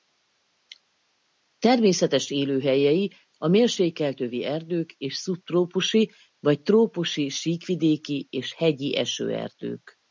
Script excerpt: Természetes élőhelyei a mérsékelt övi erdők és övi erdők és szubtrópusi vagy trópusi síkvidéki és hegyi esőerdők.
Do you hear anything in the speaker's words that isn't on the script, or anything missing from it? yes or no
yes